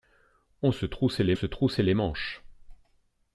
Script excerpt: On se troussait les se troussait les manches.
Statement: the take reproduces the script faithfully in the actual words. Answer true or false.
true